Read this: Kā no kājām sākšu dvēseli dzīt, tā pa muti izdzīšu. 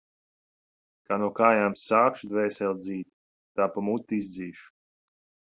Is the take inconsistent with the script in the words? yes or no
no